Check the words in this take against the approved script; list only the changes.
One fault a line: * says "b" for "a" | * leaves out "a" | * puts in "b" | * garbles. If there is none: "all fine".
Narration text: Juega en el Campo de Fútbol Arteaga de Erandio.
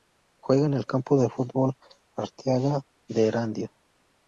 all fine